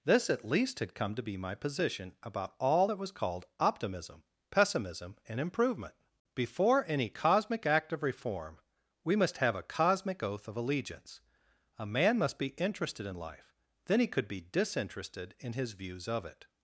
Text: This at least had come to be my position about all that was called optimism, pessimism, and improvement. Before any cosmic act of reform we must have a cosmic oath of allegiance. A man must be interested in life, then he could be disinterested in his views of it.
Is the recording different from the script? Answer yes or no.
no